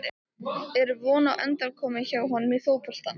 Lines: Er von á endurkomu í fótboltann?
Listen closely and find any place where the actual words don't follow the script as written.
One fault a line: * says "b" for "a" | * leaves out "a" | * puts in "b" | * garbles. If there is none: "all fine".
* puts in "hjá honum"